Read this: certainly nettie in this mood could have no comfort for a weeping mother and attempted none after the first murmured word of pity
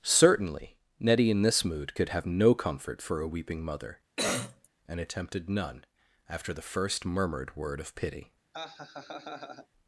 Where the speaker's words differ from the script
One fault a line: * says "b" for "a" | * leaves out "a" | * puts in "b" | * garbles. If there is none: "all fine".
all fine